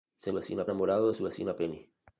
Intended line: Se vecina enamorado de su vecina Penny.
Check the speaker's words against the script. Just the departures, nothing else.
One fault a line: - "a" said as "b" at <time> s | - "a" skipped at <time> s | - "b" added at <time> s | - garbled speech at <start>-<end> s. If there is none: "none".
none